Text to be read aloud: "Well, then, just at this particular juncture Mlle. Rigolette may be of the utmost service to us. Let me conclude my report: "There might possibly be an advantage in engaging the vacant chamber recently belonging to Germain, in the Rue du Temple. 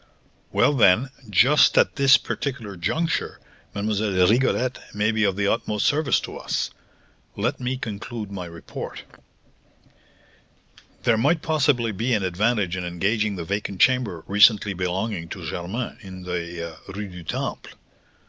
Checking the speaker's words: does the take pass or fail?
pass